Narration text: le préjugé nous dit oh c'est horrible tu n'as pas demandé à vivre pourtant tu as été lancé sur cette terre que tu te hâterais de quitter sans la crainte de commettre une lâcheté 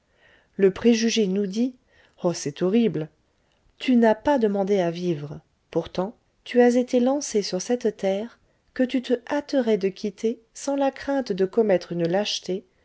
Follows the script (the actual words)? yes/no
yes